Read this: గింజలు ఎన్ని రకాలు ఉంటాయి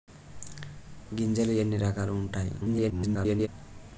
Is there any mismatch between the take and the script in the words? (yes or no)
yes